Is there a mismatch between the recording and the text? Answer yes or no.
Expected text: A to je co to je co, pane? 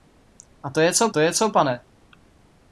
no